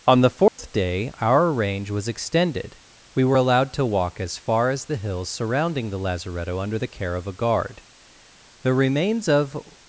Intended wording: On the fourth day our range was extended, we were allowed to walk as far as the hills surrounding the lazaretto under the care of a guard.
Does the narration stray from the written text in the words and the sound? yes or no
yes